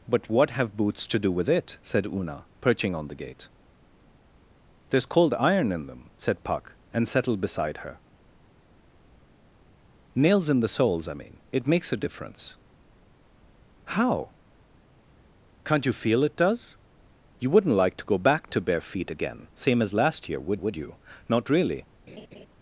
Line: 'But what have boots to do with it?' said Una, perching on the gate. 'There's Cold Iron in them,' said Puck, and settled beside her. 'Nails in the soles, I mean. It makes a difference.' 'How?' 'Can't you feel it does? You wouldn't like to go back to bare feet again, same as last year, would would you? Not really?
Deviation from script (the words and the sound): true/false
true